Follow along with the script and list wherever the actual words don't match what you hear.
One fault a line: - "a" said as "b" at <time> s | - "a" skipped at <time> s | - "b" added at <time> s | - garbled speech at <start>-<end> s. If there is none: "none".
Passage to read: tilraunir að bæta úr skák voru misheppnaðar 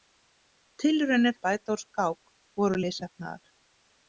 none